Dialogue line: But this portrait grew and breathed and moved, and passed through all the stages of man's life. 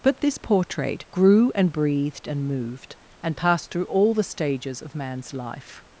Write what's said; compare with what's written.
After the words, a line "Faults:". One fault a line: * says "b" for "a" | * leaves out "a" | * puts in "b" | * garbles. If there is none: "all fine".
But this portrait grew and breathed and moved, and passed through all the stages of man's life.
Faults:
all fine